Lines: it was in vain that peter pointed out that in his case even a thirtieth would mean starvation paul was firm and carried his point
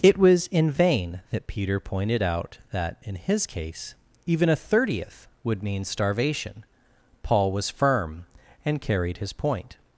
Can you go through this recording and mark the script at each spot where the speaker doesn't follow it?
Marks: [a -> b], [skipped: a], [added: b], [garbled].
it was in vain that peter pointed out that in his case even a thirtieth would mean starvation paul was firm and carried his point